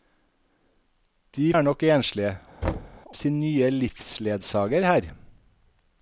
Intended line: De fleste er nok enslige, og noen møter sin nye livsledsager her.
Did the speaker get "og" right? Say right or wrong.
wrong